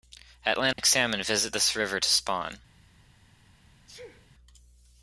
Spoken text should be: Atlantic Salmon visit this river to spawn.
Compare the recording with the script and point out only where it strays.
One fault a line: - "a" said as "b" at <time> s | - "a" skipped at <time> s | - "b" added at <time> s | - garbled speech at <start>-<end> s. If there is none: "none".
none